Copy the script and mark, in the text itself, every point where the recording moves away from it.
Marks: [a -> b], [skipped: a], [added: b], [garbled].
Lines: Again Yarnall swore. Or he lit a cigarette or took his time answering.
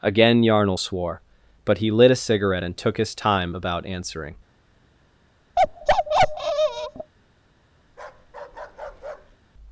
Again Yarnall swore. [Or -> But] he lit a cigarette [or -> and] took his time [added: about] answering.